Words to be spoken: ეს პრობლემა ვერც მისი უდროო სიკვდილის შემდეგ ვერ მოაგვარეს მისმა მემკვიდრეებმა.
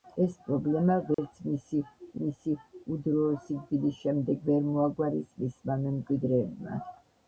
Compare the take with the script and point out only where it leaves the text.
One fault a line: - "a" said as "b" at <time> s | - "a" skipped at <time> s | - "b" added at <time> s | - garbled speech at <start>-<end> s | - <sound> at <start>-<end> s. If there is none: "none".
- dropout at 1.1-1.2 s
- "მისი" added at 2.2 s